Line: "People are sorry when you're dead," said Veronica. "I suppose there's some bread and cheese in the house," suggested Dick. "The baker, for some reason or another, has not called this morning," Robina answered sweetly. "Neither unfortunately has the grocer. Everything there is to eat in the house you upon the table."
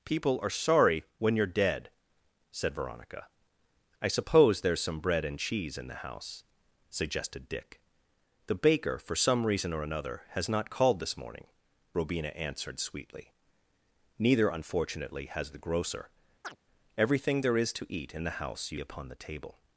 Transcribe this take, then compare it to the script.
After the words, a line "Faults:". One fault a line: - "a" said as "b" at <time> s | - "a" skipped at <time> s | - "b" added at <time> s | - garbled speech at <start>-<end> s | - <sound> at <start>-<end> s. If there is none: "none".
"People are sorry when you're dead," said Veronica. "I suppose there's some bread and cheese in the house," suggested Dick. "The baker, for some reason or another, has not called this morning," Robina answered sweetly. "Neither unfortunately has the grocer. Everything there is to eat in the house you upon the table."
Faults:
- chirp at 16.4-16.6 s